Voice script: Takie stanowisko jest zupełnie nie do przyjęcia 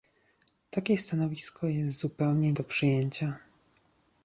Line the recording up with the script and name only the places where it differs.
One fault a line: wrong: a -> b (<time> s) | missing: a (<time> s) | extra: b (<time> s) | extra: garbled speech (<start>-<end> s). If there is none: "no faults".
missing: nie (2.5 s)